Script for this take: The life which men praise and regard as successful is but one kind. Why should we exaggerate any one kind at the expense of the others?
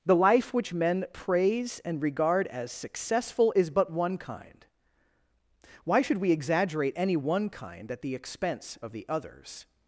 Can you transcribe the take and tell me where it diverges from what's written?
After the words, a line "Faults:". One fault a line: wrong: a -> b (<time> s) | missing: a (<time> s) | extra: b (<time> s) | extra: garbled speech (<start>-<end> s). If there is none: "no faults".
The life which men praise and regard as successful is but one kind. Why should we exaggerate any one kind at the expense of the others?
Faults:
no faults